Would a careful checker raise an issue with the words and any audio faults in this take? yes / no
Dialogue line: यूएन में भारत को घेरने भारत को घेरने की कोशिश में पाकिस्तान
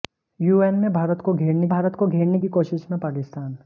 no